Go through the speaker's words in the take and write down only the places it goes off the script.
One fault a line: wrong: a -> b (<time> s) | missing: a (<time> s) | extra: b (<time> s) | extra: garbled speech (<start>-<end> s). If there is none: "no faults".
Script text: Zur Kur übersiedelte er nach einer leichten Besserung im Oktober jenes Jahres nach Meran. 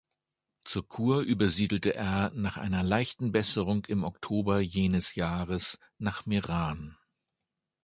no faults